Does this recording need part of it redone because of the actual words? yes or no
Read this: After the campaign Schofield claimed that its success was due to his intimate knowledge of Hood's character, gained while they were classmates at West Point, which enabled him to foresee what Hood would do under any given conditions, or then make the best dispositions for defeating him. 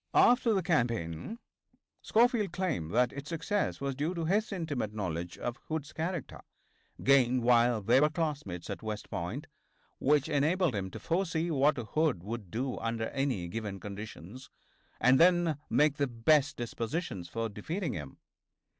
yes